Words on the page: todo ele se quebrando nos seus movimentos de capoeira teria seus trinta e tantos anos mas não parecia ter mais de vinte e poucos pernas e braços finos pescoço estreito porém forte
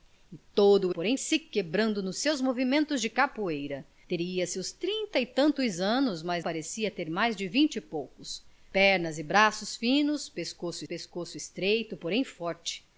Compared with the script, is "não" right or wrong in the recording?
wrong